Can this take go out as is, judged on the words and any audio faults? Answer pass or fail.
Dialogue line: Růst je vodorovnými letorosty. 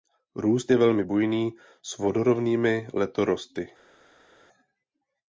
fail